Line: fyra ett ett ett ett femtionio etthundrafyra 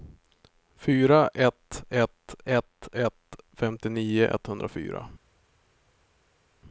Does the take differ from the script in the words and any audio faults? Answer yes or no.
no